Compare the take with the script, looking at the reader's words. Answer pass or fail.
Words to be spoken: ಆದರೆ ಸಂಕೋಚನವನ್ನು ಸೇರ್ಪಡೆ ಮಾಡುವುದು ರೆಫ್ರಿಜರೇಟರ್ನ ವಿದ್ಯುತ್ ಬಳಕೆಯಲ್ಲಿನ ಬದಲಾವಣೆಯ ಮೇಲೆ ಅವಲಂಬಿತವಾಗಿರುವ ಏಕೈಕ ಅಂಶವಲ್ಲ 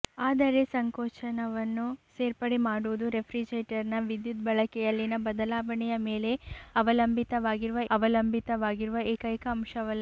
fail